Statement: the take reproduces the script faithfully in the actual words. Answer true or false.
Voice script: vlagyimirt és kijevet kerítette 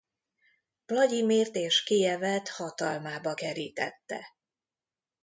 false